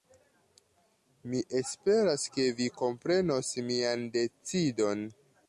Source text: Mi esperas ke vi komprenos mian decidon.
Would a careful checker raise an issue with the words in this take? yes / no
no